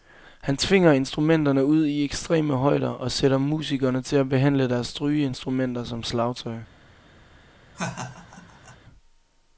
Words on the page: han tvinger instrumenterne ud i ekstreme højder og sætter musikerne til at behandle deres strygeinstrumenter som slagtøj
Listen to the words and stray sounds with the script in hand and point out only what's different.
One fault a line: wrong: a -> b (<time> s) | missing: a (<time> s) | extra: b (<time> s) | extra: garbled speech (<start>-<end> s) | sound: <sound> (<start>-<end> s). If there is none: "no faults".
sound: laugh (7.7-8.8 s)